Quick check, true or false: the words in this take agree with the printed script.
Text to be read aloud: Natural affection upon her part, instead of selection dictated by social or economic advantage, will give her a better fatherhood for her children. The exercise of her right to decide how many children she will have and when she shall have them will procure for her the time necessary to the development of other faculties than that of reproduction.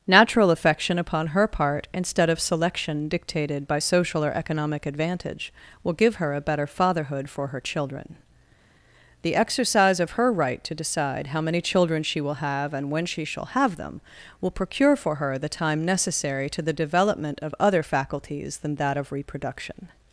true